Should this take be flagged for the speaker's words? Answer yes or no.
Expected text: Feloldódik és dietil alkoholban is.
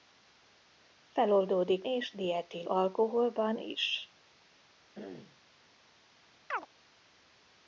no